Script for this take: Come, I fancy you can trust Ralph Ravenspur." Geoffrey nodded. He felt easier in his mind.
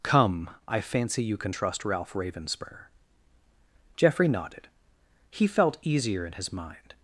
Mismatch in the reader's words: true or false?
false